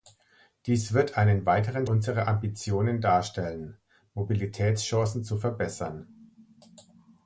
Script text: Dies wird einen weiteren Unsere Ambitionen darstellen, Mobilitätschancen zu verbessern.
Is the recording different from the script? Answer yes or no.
no